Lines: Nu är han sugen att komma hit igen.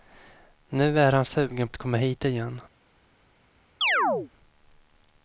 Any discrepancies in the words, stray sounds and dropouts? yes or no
yes